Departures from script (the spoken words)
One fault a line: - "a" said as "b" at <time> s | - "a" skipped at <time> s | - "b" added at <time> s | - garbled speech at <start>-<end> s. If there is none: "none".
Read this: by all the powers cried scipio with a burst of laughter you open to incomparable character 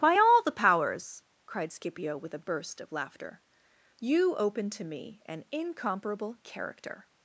- "me an" added at 4.8 s